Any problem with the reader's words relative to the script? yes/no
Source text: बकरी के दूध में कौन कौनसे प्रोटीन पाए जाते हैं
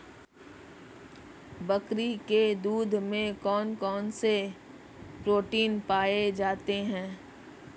no